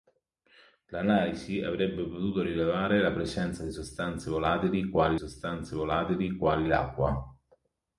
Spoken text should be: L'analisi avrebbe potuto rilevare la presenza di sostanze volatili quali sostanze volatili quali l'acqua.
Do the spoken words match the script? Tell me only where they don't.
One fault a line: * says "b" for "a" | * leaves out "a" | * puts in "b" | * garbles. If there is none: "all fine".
all fine